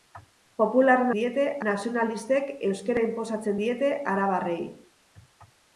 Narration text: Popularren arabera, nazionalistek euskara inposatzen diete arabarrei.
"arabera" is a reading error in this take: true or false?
true